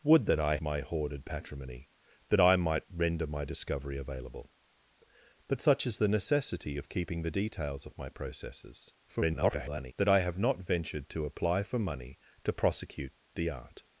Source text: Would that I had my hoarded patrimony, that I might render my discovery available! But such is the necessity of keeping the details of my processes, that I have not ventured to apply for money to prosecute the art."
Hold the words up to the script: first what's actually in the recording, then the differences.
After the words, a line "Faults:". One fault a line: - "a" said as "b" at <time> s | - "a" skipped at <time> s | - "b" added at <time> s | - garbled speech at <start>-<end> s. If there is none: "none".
Would that I my hoarded patrimony, that I might render my discovery available! But such is the necessity of keeping the details of my processes, [garbled] that I have not ventured to apply for money to prosecute the art."
Faults:
- "had" skipped at 0.6 s
- garbled speech at 9.1-9.9 s